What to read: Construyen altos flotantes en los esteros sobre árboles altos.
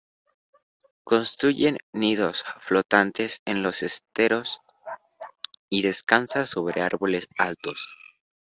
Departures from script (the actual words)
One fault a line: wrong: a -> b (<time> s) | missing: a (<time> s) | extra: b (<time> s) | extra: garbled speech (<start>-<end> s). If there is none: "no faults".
wrong: altos -> nidos (1.9 s)
extra: y descansa (5.7 s)